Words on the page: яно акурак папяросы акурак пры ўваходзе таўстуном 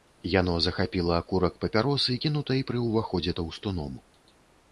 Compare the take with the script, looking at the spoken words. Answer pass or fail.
fail